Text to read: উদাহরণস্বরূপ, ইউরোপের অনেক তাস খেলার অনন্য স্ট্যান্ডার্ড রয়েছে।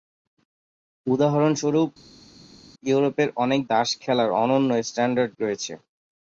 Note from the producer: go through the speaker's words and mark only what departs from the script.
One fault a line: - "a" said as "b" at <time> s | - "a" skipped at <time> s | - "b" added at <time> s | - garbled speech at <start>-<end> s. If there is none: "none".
none